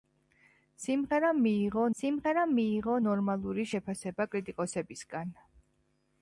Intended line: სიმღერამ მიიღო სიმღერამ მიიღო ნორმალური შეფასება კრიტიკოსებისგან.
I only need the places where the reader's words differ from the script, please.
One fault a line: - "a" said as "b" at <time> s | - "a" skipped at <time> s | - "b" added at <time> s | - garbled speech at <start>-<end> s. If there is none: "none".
none